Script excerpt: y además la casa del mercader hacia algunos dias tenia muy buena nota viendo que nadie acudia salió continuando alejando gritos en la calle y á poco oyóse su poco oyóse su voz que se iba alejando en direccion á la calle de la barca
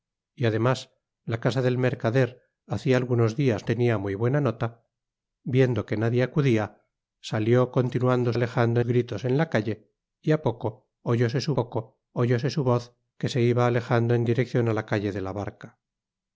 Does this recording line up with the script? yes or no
yes